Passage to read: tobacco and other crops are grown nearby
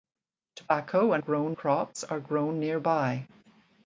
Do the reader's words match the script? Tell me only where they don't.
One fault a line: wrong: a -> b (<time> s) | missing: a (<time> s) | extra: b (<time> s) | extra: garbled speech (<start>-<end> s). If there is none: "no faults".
wrong: other -> grown (1.2 s)